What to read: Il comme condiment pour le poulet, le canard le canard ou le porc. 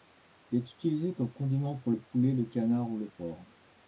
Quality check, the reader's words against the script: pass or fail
fail